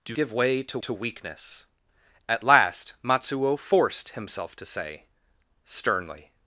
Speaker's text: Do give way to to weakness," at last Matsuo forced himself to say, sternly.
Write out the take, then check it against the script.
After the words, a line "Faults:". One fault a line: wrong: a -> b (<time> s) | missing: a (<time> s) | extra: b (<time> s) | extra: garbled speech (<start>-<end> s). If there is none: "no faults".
Do give way to to weakness," at last Matsuo forced himself to say, sternly.
Faults:
no faults